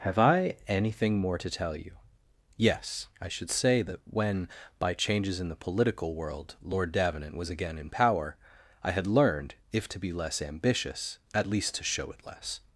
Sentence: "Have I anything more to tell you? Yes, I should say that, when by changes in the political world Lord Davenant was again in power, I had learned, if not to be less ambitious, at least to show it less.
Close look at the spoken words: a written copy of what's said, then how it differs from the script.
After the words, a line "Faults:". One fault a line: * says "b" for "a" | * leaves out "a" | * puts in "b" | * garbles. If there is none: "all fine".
"Have I anything more to tell you? Yes, I should say that, when by changes in the political world Lord Davenant was again in power, I had learned, if to be less ambitious, at least to show it less.
Faults:
* leaves out "not"